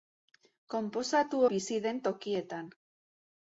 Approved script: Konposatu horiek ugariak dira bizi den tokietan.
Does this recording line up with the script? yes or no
no